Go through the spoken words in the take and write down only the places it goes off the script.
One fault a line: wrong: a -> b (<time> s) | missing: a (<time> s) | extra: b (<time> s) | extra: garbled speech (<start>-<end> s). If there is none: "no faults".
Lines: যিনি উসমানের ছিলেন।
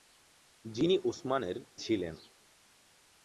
no faults